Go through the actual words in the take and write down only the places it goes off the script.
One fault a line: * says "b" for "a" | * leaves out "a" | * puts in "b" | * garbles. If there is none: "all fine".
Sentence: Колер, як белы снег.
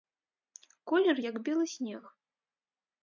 all fine